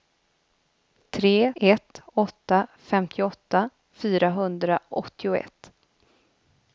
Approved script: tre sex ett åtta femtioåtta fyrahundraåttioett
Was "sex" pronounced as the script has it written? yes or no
no